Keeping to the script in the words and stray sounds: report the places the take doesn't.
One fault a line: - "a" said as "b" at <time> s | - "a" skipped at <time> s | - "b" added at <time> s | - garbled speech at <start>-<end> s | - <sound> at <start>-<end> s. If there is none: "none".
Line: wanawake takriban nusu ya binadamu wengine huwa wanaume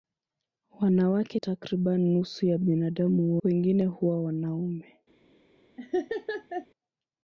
- laugh at 5.8-6.7 s